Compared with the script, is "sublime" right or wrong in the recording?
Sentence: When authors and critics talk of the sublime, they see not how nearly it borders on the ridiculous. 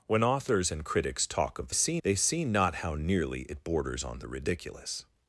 wrong